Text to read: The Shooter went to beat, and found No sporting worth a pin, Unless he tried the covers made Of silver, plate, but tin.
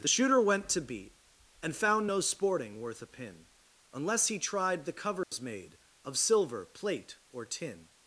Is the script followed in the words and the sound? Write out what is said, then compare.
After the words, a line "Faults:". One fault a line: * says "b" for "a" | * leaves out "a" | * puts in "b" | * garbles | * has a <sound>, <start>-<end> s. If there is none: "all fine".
The Shooter went to beat, and found No sporting worth a pin, Unless he tried the covers made Of silver, plate, or tin.
Faults:
* has a dropout, 5.2-5.3 s
* says "or" for "but"